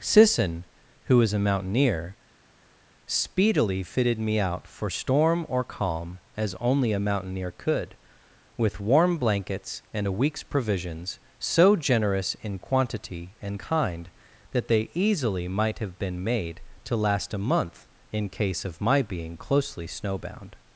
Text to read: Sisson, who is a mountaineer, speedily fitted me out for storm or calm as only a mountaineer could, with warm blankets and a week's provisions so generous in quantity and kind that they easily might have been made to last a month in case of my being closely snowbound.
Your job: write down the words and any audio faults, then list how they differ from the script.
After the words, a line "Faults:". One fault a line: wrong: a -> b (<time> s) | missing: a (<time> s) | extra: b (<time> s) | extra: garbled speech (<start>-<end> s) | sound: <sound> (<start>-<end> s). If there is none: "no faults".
Sisson, who is a mountaineer, speedily fitted me out for storm or calm as only a mountaineer could, with warm blankets and a week's provisions so generous in quantity and kind that they easily might have been made to last a month in case of my being closely snowbound.
Faults:
no faults